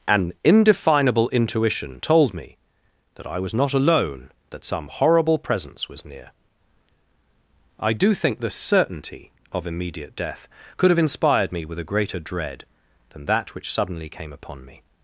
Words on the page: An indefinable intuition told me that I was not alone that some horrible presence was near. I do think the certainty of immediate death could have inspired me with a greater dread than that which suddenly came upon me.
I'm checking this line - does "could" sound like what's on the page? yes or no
yes